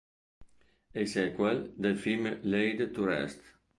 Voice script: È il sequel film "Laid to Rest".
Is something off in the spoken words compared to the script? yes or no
yes